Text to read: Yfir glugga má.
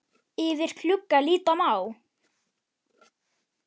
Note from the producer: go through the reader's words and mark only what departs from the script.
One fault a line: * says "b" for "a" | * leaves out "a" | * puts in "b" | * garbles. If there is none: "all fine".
* puts in "líta"